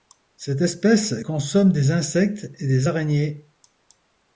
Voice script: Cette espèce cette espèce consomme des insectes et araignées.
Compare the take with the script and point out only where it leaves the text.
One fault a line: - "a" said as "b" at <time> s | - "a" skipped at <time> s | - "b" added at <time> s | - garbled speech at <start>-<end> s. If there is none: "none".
- "cette espèce" skipped at 1.1 s
- "des" added at 2.7 s